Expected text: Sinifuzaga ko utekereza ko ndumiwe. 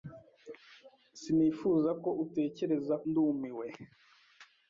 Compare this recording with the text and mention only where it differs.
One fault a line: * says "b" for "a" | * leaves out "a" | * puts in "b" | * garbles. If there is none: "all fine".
* leaves out "ko"